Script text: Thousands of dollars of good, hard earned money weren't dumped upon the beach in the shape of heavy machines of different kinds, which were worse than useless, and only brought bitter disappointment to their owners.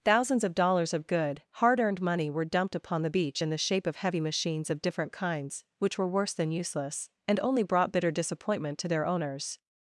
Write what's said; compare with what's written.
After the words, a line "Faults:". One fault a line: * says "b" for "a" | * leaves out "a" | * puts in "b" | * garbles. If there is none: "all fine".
Thousands of dollars of good, hard earned money were dumped upon the beach in the shape of heavy machines of different kinds, which were worse than useless, and only brought bitter disappointment to their owners.
Faults:
* says "were" for "weren't"